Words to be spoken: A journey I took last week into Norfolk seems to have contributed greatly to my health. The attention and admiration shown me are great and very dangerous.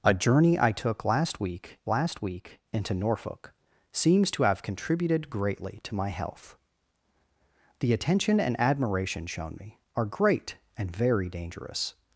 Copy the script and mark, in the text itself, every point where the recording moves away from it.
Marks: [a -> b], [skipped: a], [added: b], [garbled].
A journey I took last week [added: last week] into Norfolk seems to have contributed greatly to my health. The attention and admiration shown me are great and very dangerous.